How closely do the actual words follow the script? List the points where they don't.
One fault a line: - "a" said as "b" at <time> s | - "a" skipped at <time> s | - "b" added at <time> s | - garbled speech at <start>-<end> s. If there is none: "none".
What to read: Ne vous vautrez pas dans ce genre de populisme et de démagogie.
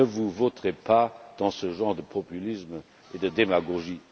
none